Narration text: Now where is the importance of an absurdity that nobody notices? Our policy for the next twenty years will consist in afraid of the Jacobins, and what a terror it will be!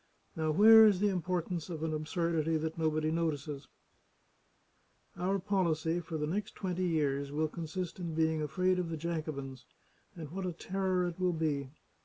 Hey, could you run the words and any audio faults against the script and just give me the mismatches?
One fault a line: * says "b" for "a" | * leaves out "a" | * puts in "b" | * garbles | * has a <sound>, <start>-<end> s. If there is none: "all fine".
* puts in "being"